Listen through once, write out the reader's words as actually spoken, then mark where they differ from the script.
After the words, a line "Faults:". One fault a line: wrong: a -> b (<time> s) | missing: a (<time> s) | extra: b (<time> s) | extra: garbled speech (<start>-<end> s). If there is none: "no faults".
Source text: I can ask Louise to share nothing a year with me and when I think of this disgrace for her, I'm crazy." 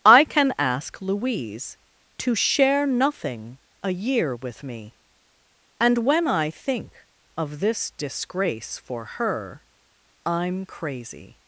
I can ask Louise to share nothing a year with me and when I think of this disgrace for her, I'm crazy."
Faults:
no faults